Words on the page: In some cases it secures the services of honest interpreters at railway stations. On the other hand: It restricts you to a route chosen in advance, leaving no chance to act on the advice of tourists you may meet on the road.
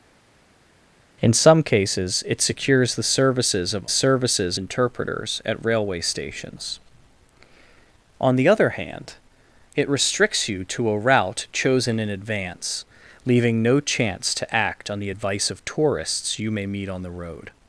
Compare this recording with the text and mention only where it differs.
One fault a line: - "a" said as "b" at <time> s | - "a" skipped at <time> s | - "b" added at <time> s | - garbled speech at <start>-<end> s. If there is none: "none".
- "honest" said as "services" at 3.9 s